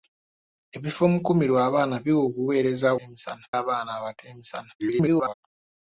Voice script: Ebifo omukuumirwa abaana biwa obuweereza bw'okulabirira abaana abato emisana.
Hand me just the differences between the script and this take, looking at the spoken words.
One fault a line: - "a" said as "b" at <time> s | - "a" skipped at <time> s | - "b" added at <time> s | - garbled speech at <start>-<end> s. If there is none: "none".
- "bw'okulabirira" said as "emisana" at 3.0 s
- garbled speech at 4.8-5.3 s